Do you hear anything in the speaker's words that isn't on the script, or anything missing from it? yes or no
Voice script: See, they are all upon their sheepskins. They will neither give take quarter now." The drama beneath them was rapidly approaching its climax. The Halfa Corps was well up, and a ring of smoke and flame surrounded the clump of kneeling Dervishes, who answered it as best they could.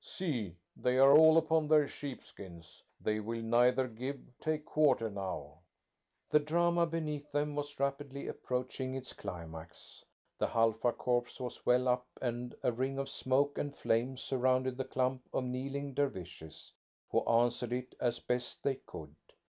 no